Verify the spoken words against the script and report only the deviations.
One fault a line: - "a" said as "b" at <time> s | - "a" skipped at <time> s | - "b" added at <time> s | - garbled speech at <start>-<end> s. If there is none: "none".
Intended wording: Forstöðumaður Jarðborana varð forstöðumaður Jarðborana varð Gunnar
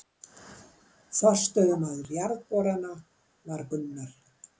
- "forstöðumaður Jarðborana varð" skipped at 3.7 s